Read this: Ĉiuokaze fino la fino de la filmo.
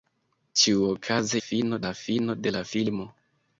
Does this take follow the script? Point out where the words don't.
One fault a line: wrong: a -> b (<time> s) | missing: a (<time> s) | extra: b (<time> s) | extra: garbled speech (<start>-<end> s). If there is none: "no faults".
no faults